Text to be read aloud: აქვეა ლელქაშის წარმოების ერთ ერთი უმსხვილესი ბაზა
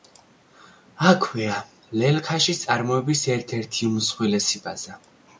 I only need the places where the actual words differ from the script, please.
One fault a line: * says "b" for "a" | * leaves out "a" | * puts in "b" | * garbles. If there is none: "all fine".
all fine